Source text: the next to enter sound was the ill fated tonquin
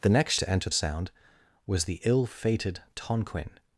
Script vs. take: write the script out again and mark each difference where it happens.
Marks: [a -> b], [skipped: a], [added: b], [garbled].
the next to enter sound was the ill fated tonquin